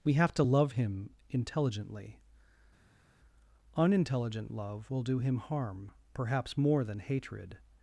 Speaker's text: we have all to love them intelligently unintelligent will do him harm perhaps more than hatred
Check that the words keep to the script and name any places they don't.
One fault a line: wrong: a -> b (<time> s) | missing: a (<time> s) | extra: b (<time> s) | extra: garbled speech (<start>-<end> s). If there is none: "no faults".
missing: all (0.3 s)
wrong: them -> him (0.7 s)
extra: love (4.5 s)